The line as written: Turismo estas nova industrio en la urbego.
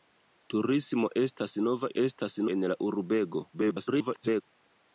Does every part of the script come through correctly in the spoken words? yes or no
no